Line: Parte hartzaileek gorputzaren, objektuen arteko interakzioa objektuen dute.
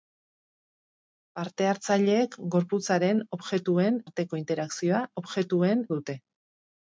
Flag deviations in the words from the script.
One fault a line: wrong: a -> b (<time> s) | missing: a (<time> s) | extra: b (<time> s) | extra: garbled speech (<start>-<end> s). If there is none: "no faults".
no faults